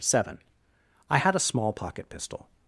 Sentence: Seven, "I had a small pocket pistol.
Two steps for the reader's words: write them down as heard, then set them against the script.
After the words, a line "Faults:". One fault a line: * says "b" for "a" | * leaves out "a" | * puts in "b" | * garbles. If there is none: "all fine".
Seven, "I had a small pocket pistol.
Faults:
all fine